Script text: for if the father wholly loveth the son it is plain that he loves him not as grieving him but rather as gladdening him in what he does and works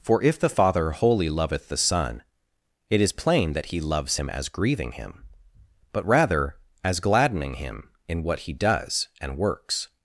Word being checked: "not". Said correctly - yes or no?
no